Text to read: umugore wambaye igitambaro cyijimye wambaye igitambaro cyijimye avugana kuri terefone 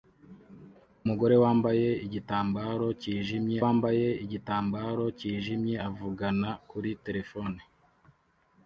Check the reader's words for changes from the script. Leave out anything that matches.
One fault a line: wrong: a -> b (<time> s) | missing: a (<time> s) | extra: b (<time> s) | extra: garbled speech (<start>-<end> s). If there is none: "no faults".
no faults